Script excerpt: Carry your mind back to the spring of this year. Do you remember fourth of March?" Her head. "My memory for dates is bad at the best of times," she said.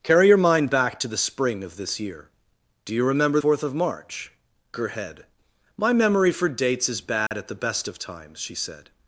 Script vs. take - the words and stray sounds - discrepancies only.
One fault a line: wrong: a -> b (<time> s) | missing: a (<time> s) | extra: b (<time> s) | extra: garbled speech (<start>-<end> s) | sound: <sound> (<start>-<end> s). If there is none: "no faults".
sound: dropout (7.3-7.3 s)